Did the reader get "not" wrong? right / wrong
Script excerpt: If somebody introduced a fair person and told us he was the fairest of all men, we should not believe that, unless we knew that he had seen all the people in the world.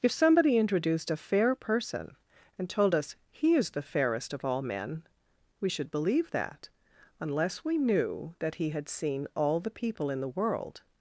wrong